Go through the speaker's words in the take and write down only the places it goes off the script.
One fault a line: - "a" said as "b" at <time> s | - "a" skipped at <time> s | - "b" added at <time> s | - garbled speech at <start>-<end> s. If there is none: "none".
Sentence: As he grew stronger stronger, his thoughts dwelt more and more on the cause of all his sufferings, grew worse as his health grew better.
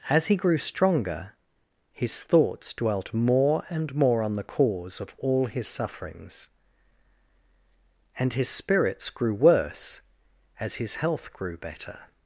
- "stronger" skipped at 1.3 s
- "and his spirits" added at 8.2 s